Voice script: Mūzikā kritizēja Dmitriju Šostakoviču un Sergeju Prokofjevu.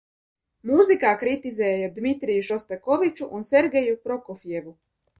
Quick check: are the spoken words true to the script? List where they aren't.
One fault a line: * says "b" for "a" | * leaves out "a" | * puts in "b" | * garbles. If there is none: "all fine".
all fine